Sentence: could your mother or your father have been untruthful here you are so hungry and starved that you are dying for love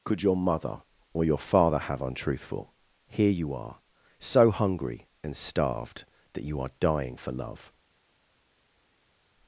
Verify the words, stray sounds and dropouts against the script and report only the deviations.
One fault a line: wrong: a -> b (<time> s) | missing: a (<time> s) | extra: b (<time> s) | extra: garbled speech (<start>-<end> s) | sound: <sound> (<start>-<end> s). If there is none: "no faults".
missing: been (2.0 s)